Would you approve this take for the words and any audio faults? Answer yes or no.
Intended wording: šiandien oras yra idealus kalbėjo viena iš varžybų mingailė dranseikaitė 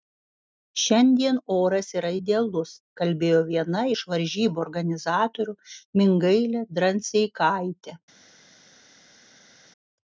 no